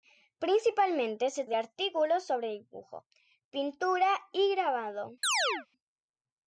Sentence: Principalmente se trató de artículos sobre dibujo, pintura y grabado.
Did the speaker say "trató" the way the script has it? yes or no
no